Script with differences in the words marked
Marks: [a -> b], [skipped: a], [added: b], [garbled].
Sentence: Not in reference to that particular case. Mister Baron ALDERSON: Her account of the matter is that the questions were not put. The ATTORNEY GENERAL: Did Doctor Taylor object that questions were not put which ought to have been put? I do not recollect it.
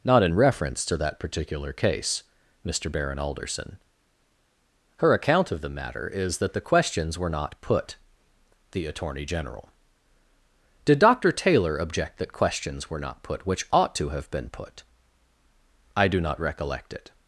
Not in reference to that particular case. Mister Baron ALDERSON: Her account of the matter is that the questions were not put. The ATTORNEY GENERAL: Did Doctor Taylor object that questions were not put which ought to have been put? I do not recollect it.